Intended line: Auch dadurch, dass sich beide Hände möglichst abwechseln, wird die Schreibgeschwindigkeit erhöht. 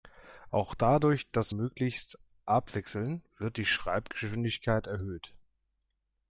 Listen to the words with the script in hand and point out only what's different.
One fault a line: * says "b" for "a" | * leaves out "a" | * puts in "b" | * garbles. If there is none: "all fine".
* leaves out "sich beide Hände"